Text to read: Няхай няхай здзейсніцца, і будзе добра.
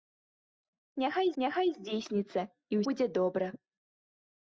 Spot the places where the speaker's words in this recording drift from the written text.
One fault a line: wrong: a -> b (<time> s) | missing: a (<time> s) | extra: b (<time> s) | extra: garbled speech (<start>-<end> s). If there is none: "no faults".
no faults